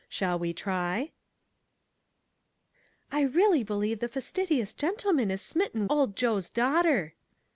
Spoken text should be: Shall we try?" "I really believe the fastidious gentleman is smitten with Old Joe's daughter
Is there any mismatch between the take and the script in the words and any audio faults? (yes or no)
yes